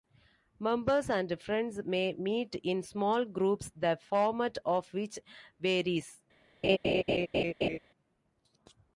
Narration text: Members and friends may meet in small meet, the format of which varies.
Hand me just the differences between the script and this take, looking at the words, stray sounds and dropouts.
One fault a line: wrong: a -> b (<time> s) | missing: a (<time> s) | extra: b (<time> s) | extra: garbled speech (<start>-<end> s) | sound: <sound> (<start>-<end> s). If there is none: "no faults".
wrong: meet -> groups (3.2 s)
sound: laugh (6.6-7.8 s)